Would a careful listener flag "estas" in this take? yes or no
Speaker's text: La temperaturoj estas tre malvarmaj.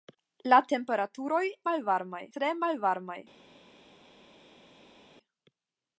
yes